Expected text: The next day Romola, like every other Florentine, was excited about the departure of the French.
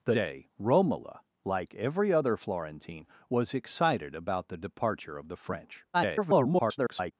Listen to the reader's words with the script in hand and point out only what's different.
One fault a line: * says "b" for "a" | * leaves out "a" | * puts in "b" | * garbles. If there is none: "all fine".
* leaves out "next"
* garbles